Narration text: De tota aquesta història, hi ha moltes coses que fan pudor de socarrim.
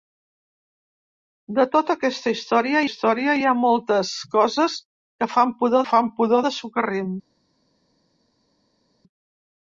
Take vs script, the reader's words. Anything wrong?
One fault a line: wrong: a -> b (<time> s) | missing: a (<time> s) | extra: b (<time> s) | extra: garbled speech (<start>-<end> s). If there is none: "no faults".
extra: història (2.9 s)
extra: fan pudor (5.9 s)